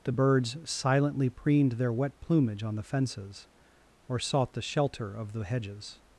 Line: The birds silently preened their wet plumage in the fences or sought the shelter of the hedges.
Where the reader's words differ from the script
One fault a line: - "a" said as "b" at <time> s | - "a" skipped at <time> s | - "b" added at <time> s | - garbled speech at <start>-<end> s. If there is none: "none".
- "in" said as "on" at 2.6 s